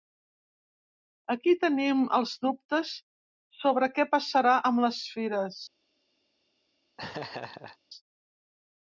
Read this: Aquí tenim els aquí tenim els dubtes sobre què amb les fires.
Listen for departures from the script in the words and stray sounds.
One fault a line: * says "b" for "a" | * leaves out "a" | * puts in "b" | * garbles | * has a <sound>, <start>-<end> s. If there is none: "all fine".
* leaves out "aquí tenim els"
* puts in "passarà"
* has a laugh, 7.0-7.8 s